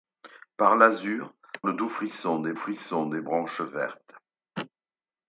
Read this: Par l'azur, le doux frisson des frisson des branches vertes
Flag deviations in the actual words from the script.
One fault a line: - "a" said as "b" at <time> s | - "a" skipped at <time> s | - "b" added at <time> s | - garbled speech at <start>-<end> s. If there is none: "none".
none